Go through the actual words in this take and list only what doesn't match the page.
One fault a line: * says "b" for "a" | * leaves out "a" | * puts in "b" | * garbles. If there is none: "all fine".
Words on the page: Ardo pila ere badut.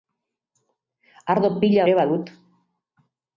all fine